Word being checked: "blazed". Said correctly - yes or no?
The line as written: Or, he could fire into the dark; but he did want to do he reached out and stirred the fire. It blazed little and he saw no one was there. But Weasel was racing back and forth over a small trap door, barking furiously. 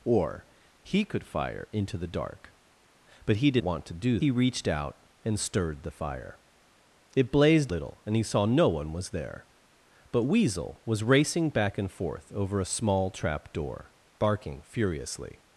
yes